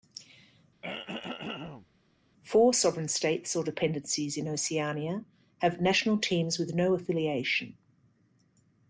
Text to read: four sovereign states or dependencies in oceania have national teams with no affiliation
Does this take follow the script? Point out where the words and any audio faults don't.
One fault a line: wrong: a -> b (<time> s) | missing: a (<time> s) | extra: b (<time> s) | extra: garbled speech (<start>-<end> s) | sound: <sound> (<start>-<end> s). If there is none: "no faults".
sound: throat clearing (0.8-1.9 s)